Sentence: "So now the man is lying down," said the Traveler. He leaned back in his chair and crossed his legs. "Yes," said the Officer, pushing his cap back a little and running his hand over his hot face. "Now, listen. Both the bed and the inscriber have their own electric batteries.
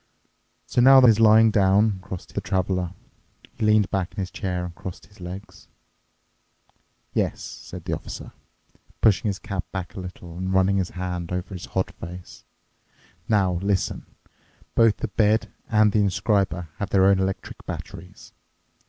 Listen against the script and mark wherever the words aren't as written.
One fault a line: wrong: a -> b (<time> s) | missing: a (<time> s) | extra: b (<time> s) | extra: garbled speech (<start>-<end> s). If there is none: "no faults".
missing: man (1.1 s)
wrong: said -> crossed (2.0 s)